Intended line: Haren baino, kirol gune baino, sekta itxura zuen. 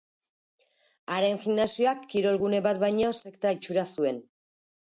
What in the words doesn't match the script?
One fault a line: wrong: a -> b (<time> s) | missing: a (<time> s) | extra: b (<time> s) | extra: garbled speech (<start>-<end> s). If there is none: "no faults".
wrong: baino -> gimnasioak (1.4 s)
extra: bat (2.7 s)